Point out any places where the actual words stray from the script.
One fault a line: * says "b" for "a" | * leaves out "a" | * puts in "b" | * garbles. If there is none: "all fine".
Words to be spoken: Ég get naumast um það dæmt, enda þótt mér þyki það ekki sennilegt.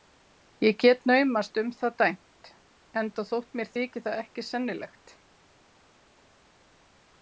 all fine